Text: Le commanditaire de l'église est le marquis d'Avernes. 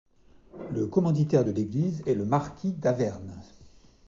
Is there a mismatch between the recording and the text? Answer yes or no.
no